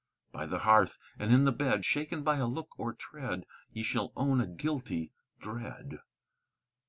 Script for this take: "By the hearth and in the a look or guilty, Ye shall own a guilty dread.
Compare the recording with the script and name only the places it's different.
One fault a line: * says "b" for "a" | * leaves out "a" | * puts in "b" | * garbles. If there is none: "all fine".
* puts in "bed Shaken by"
* says "tread" for "guilty"